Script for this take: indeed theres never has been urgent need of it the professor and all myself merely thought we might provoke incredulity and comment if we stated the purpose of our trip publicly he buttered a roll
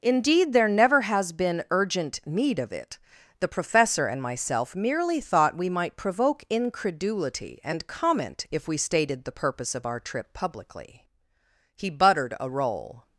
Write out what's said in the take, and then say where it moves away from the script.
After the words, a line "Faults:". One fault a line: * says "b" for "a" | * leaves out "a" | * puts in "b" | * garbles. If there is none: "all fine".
indeed there never has been urgent need of it the professor and myself merely thought we might provoke incredulity and comment if we stated the purpose of our trip publicly he buttered a roll
Faults:
* says "there" for "theres"
* leaves out "all"